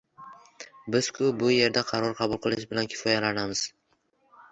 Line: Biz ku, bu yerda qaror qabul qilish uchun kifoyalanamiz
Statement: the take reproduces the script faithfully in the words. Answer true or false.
false